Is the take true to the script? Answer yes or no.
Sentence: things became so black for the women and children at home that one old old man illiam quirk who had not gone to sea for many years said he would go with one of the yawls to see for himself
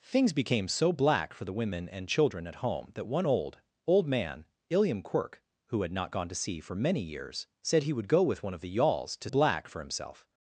no